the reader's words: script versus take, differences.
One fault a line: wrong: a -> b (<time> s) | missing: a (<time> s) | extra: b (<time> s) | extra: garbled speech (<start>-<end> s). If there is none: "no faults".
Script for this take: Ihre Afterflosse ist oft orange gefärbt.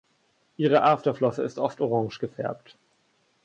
no faults